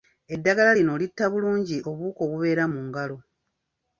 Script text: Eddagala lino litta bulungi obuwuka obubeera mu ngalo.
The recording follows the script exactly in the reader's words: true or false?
true